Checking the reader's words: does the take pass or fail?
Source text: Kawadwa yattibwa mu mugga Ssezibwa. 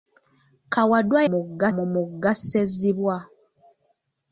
fail